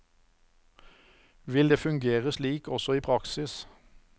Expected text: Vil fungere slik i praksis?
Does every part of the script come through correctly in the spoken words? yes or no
no